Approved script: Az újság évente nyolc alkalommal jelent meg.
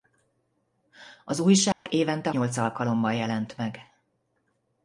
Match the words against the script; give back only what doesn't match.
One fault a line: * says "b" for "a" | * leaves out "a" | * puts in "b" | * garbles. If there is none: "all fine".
all fine